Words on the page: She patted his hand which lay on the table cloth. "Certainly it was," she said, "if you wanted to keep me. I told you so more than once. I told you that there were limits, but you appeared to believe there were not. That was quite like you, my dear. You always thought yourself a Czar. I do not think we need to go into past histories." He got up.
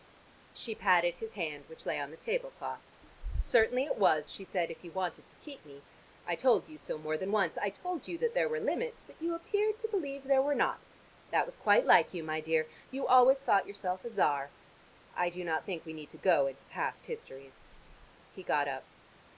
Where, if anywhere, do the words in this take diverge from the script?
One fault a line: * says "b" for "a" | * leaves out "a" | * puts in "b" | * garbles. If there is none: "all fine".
all fine